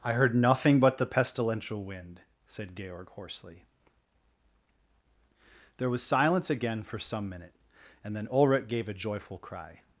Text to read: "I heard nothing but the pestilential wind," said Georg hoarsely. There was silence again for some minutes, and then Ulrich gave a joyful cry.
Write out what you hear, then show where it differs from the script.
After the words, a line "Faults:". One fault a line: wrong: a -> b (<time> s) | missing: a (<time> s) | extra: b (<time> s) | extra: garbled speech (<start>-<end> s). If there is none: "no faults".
"I heard nothing but the pestilential wind," said Georg hoarsely. There was silence again for some minute, and then Ulrich gave a joyful cry.
Faults:
wrong: minutes -> minute (7.3 s)